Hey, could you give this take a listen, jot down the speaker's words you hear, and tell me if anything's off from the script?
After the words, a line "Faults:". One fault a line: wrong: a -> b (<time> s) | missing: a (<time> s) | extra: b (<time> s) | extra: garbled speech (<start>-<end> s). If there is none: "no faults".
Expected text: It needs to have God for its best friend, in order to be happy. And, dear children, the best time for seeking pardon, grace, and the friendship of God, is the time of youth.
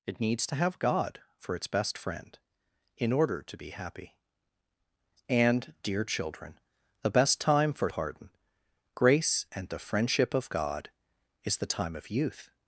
It needs to have God for its best friend, in order to be happy. And, dear children, the best time for pardon, grace, and the friendship of God, is the time of youth.
Faults:
missing: seeking (7.9 s)